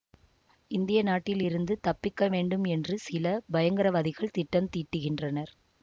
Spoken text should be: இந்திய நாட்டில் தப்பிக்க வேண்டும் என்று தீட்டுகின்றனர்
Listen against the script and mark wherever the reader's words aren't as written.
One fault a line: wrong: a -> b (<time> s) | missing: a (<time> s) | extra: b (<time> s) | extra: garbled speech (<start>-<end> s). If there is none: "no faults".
extra: இருந்து (1.4 s)
extra: சில பயங்கரவாதிகள் திட்டம் (3.1 s)